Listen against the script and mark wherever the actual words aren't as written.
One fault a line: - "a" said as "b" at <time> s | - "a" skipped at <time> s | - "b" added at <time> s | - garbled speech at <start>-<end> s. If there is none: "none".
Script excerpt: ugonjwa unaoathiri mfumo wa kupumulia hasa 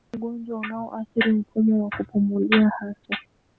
none